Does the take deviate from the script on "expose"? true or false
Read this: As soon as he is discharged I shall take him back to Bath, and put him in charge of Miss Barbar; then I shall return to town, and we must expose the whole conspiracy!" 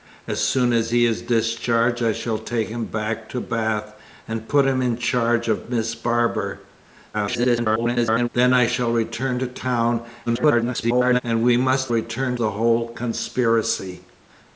true